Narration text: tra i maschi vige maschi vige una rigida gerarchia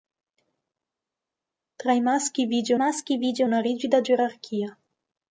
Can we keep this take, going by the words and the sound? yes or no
yes